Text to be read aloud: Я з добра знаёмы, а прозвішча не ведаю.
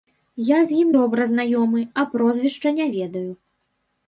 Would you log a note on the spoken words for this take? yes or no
yes